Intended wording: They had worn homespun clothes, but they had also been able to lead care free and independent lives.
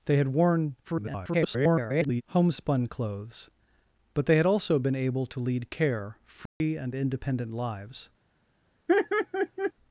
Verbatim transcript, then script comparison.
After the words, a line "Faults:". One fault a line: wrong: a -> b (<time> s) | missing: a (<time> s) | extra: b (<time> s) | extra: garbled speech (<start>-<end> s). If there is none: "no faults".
They had worn [garbled] homespun clothes, but they had also been able to lead care free and independent lives.
Faults:
extra: garbled speech (0.8-2.2 s)